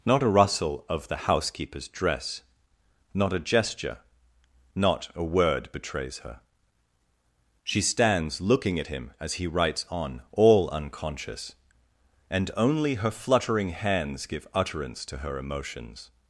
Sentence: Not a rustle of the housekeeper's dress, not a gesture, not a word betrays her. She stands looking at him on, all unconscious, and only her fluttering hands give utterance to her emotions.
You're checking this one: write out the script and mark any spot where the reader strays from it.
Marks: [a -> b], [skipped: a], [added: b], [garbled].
Not a rustle of the housekeeper's dress, not a gesture, not a word betrays her. She stands looking at him [added: as he writes] on, all unconscious, and only her fluttering hands give utterance to her emotions.